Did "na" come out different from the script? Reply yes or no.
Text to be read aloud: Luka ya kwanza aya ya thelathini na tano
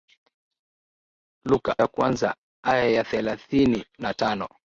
no